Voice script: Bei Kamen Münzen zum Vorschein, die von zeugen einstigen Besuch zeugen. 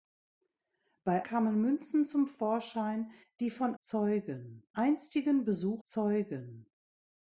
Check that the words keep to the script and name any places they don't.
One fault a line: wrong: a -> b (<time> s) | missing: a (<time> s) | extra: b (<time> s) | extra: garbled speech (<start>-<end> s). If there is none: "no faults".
no faults